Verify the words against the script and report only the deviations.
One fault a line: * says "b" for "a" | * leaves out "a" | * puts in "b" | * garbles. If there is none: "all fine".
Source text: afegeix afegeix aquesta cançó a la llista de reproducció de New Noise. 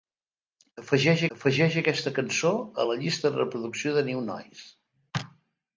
all fine